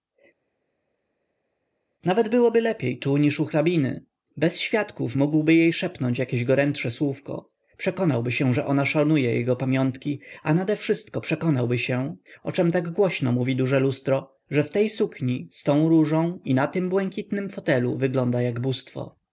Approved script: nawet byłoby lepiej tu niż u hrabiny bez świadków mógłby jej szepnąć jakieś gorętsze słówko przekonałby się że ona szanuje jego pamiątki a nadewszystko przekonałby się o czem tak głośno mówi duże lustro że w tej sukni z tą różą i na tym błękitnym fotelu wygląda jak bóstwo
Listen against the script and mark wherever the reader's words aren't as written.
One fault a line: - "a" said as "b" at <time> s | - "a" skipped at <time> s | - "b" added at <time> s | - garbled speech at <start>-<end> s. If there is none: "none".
none